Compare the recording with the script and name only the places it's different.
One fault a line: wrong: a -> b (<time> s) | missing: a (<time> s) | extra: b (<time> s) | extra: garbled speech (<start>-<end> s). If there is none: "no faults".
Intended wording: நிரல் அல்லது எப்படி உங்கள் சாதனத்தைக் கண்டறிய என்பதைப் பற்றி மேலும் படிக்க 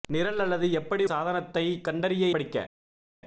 missing: உங்கள் (1.0 s)
missing: என்பதைப் பற்றி மேலும் (2.3 s)